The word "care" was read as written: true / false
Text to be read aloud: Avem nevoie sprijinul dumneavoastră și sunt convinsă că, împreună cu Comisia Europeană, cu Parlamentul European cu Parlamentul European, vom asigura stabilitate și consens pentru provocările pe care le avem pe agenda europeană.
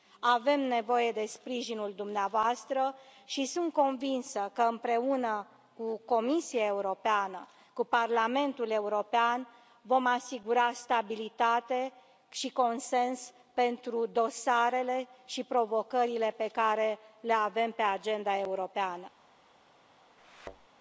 true